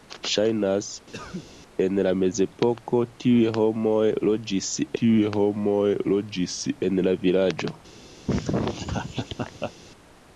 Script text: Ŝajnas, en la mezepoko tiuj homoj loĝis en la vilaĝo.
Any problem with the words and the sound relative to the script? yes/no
yes